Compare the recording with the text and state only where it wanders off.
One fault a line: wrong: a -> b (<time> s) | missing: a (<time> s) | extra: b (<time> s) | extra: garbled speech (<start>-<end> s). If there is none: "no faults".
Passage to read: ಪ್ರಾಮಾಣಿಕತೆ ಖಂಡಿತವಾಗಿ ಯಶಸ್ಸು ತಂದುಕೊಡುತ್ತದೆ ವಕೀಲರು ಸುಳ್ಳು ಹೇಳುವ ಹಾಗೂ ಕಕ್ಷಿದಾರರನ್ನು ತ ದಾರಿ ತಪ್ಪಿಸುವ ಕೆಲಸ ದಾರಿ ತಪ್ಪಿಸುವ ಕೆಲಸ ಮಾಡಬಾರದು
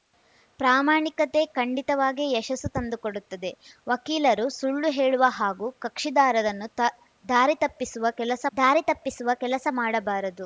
no faults